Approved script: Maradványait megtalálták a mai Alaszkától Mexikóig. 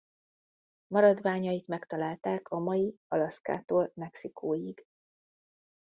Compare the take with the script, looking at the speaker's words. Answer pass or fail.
pass